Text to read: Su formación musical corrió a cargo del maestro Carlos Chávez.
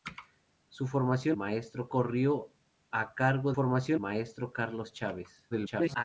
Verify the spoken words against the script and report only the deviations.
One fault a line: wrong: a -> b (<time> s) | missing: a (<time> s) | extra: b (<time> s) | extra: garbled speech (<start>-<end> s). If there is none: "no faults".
wrong: musical -> maestro (1.3 s)
wrong: del -> formación (3.5 s)
extra: garbled speech (5.5-6.0 s)